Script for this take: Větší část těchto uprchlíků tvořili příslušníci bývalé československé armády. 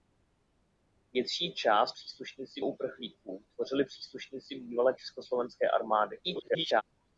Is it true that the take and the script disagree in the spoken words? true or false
true